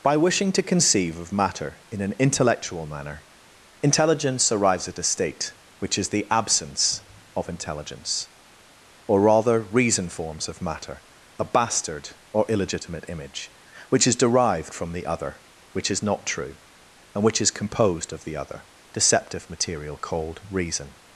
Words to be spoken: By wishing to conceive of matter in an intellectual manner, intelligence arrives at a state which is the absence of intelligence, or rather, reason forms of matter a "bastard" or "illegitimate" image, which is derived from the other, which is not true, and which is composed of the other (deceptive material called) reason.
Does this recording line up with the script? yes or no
yes